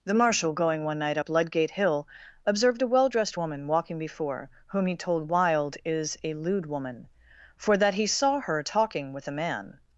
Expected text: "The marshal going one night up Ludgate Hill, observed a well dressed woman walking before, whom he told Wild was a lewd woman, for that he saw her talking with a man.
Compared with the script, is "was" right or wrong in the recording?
wrong